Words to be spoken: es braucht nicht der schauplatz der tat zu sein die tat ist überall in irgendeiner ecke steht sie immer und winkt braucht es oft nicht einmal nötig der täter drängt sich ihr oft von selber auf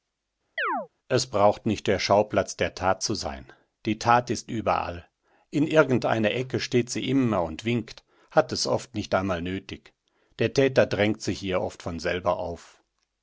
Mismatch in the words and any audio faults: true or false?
true